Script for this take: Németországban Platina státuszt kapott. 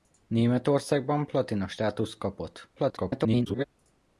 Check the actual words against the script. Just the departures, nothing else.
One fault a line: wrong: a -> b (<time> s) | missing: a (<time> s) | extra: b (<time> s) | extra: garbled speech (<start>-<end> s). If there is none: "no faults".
extra: garbled speech (2.8-3.6 s)